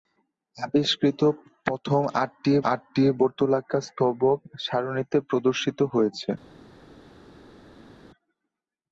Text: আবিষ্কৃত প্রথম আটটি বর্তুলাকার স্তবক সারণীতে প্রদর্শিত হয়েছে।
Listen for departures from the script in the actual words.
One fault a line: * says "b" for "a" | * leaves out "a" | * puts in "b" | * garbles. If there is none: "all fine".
* puts in "আটটি"